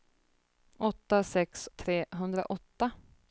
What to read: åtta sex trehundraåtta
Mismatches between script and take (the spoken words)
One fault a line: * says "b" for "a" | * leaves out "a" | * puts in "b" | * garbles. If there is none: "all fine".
all fine